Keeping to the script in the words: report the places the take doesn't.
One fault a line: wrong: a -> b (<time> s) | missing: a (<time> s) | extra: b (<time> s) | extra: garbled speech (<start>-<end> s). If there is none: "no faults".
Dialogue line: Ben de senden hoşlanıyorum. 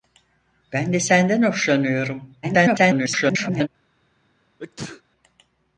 extra: garbled speech (2.4-3.7 s)